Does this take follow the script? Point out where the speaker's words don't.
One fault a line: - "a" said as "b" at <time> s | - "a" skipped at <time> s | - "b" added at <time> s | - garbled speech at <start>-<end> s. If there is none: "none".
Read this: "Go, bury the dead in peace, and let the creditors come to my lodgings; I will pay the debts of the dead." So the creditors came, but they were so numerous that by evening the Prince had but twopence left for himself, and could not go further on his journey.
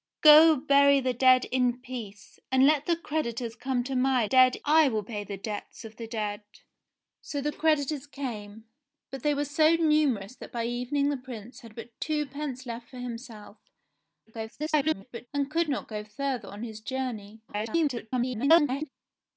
- "lodgings" said as "dead" at 4.2 s
- garbled speech at 14.3-15.3 s
- garbled speech at 17.5-18.9 s